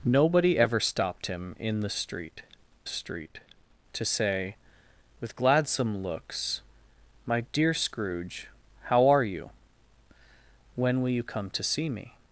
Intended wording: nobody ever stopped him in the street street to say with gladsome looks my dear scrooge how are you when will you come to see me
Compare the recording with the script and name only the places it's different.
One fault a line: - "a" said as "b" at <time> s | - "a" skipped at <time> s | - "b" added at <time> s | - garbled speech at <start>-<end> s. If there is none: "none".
none